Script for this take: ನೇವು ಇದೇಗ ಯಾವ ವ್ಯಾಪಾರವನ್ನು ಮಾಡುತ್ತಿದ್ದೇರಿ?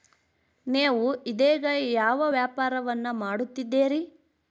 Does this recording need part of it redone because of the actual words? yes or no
no